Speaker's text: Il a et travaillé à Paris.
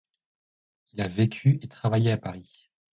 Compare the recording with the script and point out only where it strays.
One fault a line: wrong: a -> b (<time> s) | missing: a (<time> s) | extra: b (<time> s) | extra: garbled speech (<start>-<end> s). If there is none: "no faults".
extra: vécu (1.1 s)